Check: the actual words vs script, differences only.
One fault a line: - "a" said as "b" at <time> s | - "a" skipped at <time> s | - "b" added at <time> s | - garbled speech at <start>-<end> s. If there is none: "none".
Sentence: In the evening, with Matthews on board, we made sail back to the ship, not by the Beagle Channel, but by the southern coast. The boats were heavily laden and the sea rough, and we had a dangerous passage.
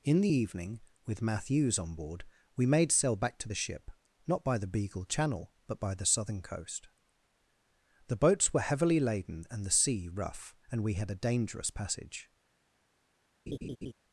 none